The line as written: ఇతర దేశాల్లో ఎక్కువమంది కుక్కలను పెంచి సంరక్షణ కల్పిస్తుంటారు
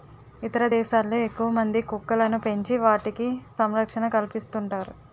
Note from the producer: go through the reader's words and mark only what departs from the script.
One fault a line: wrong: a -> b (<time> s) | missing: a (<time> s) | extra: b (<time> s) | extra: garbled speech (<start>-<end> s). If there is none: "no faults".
extra: వాటికి (2.8 s)